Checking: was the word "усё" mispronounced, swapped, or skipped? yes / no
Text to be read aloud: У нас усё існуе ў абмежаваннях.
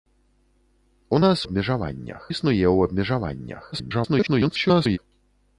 yes